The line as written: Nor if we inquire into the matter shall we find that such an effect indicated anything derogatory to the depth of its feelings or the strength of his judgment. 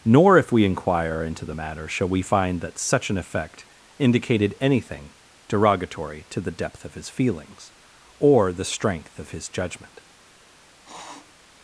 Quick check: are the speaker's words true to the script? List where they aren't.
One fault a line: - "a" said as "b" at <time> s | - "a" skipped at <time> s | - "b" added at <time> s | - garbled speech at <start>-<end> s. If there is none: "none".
- "its" said as "his" at 6.9 s